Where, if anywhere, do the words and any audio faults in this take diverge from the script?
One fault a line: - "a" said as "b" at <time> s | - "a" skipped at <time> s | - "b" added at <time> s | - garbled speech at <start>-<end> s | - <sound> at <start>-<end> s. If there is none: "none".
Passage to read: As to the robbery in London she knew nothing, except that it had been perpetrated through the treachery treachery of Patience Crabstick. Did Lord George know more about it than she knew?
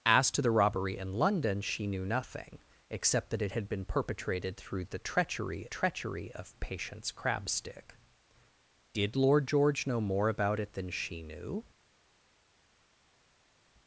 none